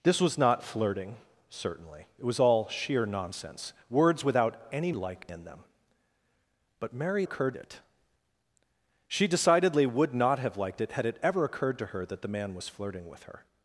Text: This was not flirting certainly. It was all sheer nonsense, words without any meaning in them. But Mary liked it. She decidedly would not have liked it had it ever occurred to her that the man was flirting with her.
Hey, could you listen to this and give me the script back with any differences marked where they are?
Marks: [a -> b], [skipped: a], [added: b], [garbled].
This was not flirting certainly. It was all sheer nonsense, words without any [meaning -> liked] in them. But Mary [liked -> occurred] it. She decidedly would not have liked it had it ever occurred to her that the man was flirting with her.